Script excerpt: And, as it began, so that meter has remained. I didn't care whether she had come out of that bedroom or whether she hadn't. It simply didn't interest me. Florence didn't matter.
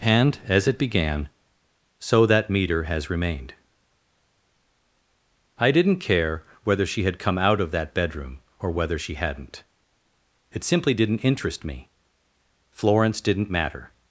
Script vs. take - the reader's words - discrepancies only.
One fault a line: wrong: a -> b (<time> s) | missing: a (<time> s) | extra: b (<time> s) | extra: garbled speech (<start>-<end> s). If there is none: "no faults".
no faults